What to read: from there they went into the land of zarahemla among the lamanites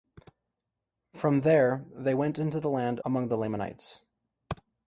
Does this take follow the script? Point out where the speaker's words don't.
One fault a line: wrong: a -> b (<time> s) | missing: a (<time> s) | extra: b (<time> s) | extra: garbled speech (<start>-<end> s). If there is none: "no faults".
missing: of zarahemla (3.0 s)